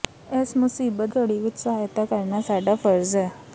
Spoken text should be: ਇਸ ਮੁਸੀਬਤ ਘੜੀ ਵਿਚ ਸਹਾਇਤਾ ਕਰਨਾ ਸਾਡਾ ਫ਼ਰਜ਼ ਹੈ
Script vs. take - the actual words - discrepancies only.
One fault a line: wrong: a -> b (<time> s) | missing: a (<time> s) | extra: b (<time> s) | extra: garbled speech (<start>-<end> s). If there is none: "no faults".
no faults